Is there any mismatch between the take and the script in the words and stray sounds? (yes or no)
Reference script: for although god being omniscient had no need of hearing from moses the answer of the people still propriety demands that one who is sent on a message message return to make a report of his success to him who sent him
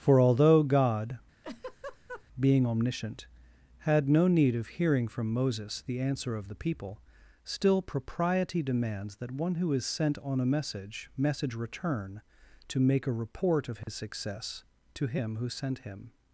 yes